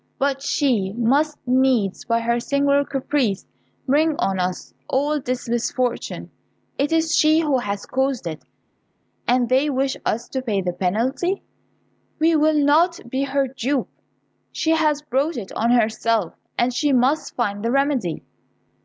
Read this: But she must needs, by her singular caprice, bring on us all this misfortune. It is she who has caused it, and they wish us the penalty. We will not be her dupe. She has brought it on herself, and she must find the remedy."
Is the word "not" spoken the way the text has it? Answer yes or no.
yes